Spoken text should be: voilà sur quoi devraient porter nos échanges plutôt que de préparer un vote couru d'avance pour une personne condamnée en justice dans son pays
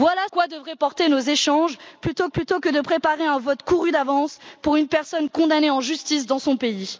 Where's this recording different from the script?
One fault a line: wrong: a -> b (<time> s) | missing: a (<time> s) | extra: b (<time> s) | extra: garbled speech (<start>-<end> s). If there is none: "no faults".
missing: sur (0.3 s)
extra: plutôt (2.3 s)